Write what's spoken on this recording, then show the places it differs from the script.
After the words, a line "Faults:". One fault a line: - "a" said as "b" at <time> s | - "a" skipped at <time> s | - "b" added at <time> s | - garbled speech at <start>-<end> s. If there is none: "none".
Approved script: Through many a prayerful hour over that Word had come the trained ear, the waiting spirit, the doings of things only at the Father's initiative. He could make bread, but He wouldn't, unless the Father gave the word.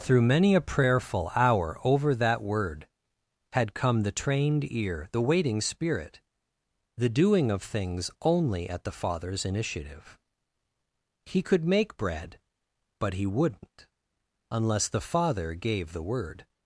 Through many a prayerful hour over that Word had come the trained ear, the waiting spirit, the doing of things only at the Father's initiative. He could make bread, but He wouldn't, unless the Father gave the word.
Faults:
- "doings" said as "doing" at 7.1 s